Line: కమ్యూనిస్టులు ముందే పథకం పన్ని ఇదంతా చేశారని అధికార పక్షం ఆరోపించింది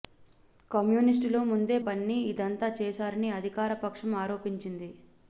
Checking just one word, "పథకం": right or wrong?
wrong